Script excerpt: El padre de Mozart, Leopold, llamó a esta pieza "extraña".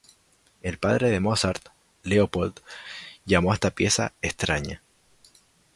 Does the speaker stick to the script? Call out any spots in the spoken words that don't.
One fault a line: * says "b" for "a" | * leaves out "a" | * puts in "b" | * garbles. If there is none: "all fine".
all fine